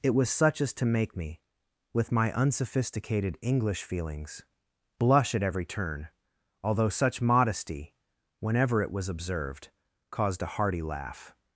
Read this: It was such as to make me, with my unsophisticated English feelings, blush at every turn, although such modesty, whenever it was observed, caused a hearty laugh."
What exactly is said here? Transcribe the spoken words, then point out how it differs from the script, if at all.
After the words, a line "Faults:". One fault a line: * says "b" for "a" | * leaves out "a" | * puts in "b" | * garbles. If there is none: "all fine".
It was such as to make me, with my unsophisticated English feelings, blush at every turn, although such modesty, whenever it was observed, caused a hearty laugh."
Faults:
all fine